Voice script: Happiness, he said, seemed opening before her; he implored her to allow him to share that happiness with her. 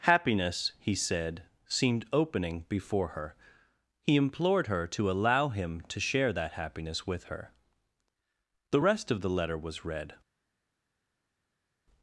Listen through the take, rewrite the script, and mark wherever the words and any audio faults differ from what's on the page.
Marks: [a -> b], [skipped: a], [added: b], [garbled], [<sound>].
Happiness, he said, seemed opening before her; he implored her to allow him to share that happiness with her. [added: The rest of the letter was read]